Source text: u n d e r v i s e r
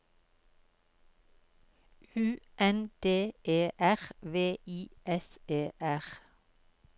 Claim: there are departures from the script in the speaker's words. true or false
false